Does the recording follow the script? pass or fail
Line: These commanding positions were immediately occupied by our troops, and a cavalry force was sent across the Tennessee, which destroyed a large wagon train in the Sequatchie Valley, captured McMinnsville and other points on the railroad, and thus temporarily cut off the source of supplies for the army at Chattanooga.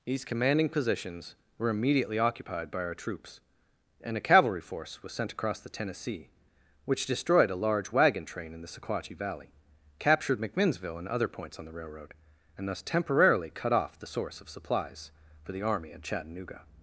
pass